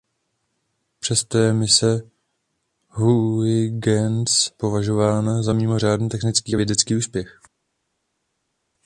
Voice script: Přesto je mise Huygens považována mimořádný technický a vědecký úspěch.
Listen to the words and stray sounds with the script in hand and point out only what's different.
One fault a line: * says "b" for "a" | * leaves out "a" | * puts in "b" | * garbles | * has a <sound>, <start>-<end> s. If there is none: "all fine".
* puts in "za"